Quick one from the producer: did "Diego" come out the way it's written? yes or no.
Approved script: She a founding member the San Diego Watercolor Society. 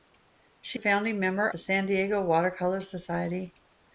yes